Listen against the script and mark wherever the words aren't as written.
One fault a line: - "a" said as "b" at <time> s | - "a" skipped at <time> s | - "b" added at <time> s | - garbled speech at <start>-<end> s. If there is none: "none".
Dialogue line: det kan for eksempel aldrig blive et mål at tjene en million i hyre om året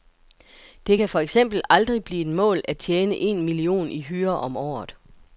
none